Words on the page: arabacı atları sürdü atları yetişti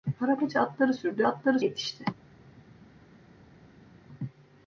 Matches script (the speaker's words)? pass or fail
pass